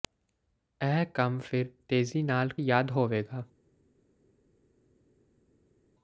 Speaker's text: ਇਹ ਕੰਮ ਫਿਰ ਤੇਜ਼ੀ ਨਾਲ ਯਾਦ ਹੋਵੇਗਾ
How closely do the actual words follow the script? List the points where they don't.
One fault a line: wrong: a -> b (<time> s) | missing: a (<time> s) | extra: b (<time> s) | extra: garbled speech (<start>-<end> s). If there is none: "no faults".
no faults